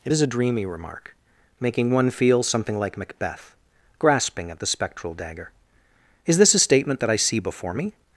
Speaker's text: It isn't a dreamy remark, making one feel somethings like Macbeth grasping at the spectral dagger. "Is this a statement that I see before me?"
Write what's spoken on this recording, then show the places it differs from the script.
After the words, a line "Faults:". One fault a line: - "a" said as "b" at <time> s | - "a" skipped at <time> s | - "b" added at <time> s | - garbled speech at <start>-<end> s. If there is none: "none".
It is a dreamy remark, making one feel something like Macbeth grasping at the spectral dagger. "Is this a statement that I see before me?"
Faults:
- "isn't" said as "is" at 0.1 s
- "somethings" said as "something" at 2.4 s